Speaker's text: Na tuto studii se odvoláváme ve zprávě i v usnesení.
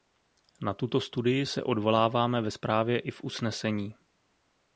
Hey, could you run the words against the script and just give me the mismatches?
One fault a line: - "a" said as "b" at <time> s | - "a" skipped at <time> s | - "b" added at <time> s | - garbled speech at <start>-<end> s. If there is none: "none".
none